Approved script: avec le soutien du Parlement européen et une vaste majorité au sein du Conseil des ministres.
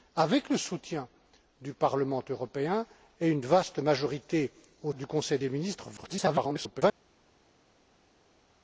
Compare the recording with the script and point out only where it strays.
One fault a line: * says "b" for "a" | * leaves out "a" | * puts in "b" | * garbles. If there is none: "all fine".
* leaves out "sein"
* garbles